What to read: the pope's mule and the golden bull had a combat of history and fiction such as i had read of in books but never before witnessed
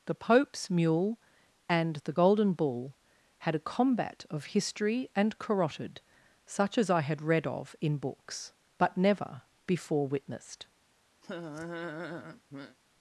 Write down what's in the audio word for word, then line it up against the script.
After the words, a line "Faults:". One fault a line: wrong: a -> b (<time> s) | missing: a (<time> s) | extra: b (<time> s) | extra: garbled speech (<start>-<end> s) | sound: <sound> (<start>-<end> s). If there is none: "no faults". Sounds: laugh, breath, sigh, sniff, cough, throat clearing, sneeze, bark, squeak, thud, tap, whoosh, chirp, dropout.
the pope's mule and the golden bull had a combat of history and carotid such as i had read of in books but never before witnessed
Faults:
wrong: fiction -> carotid (5.4 s)
sound: laugh (11.2-12.8 s)